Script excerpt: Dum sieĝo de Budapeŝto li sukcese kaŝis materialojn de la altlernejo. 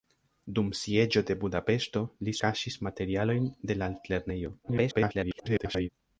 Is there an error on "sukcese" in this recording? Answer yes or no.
yes